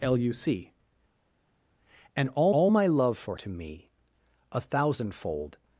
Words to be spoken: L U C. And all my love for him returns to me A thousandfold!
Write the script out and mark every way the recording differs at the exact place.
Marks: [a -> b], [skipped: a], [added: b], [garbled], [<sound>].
L U C. And all [added: all] my love for [skipped: him returns] to me A thousandfold!